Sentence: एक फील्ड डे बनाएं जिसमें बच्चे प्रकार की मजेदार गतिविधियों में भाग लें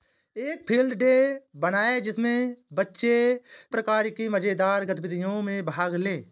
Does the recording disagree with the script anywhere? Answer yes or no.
no